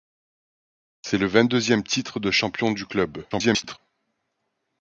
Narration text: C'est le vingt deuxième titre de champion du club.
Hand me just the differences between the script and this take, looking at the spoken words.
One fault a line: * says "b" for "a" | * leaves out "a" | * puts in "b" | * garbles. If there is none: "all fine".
* garbles